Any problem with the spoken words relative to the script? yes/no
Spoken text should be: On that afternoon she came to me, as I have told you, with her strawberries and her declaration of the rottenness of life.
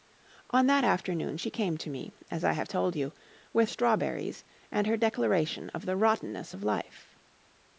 yes